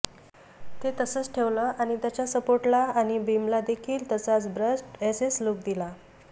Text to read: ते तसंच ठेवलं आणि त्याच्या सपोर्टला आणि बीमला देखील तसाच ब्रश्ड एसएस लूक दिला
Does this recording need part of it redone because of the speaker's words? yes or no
no